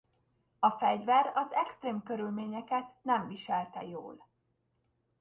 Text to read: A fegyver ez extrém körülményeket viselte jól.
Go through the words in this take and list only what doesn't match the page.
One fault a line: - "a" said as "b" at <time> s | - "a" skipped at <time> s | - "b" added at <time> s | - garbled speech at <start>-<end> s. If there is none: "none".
- "ez" said as "az" at 1.4 s
- "nem" added at 3.0 s